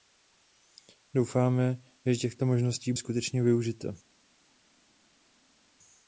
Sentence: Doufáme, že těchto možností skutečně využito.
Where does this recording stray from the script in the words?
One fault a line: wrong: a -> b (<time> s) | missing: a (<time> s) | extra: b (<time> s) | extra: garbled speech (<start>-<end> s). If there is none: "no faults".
no faults